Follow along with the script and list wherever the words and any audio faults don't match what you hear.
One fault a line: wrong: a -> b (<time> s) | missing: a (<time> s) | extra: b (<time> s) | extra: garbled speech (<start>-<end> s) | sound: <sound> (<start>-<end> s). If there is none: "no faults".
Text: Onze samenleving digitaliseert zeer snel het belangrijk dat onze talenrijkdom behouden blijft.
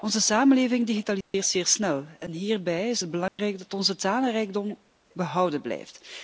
sound: dropout (1.2-1.3 s)
extra: en hierbij is (2.2 s)
sound: dropout (3.3-3.4 s)